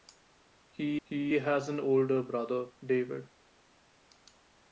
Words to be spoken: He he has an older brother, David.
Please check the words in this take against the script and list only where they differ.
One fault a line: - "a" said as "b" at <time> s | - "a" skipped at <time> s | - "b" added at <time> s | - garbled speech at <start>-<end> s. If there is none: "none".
none